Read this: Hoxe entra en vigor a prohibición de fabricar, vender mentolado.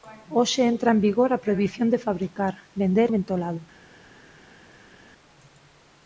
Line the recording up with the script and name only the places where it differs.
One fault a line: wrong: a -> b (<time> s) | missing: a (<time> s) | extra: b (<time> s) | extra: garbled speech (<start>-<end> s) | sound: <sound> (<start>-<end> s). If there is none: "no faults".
no faults